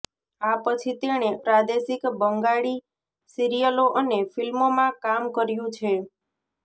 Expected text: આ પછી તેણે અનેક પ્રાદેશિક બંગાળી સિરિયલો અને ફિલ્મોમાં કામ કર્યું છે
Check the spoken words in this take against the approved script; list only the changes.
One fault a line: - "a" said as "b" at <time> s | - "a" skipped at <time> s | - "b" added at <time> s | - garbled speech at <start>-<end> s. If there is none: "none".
- "અનેક" skipped at 1.3 s